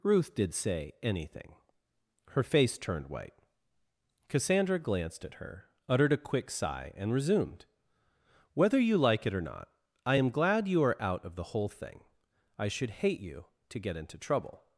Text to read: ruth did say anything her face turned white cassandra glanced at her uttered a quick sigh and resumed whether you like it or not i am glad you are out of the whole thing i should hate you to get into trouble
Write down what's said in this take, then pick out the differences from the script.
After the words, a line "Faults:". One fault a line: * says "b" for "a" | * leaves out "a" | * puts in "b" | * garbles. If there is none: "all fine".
ruth did say anything her face turned white cassandra glanced at her uttered a quick sigh and resumed whether you like it or not i am glad you are out of the whole thing i should hate you to get into trouble
Faults:
all fine